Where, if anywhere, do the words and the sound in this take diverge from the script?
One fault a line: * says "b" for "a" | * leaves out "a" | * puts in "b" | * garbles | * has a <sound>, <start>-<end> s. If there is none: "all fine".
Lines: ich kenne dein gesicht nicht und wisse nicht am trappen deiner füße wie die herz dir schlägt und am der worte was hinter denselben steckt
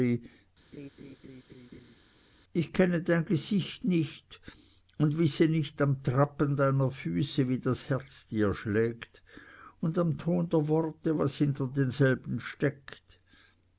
* has a laugh, 0.7-2.0 s
* says "das" for "die"
* puts in "ton"